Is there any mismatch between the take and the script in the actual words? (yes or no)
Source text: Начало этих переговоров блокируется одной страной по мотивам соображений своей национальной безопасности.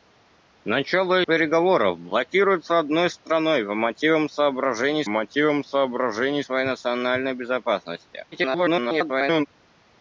yes